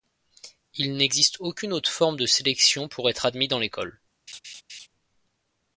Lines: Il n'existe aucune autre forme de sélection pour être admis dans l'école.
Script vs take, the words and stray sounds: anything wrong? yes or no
yes